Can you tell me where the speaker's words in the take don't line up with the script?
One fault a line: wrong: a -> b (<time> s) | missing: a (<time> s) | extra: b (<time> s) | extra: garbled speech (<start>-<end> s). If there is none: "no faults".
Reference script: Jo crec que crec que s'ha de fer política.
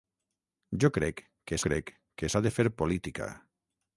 no faults